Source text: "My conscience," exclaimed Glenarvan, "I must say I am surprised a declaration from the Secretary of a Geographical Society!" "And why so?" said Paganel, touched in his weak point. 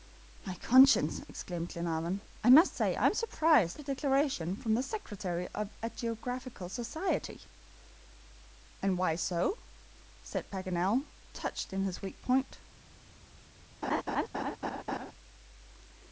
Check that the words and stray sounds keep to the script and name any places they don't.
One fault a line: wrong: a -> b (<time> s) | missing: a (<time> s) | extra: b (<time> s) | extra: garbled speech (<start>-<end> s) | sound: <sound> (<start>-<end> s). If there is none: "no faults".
sound: laugh (13.8-15.1 s)